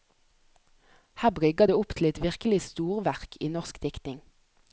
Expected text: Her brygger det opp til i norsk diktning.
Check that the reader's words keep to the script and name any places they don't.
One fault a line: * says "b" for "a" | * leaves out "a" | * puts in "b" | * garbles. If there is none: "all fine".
* puts in "et virkelig storverk"